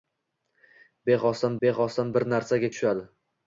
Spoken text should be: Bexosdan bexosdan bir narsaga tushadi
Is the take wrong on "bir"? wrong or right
right